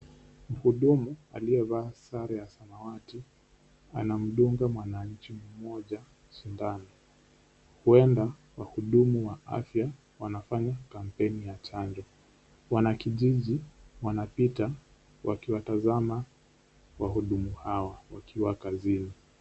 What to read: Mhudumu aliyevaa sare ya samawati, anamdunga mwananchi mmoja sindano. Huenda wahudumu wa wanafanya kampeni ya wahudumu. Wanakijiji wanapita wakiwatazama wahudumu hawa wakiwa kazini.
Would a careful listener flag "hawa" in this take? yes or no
no